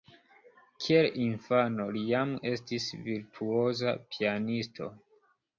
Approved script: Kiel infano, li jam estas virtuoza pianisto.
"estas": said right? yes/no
no